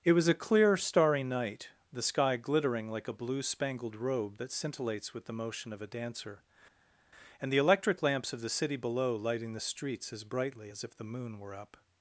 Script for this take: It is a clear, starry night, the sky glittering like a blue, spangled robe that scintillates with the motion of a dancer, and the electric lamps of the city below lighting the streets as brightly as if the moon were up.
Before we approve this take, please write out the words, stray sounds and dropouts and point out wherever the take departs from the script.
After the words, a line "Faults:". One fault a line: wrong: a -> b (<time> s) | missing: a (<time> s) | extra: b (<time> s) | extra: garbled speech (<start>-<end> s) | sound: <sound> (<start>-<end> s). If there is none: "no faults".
It was a clear, starry night, the sky glittering like a blue, spangled robe that scintillates with the motion of a dancer, and the electric lamps of the city below lighting the streets as brightly as if the moon were up.
Faults:
wrong: is -> was (0.1 s)